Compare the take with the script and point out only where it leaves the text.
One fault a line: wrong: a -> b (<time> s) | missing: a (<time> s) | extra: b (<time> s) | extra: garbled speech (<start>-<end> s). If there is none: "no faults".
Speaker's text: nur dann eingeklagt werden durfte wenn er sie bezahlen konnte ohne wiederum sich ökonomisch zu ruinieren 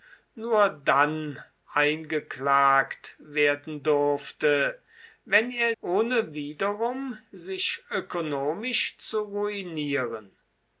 missing: sie bezahlen konnte (5.8 s)